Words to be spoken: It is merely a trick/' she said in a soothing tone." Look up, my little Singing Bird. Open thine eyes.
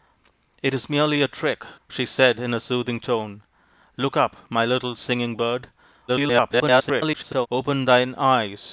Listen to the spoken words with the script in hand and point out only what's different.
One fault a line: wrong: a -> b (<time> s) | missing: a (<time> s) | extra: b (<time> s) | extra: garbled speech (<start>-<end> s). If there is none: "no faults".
extra: garbled speech (6.1-7.5 s)